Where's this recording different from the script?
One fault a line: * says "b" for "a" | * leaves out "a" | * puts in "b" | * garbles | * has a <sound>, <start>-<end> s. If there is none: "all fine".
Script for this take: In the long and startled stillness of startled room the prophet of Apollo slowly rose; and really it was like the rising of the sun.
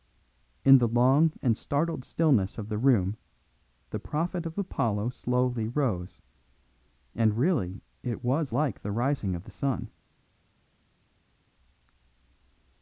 * says "the" for "startled"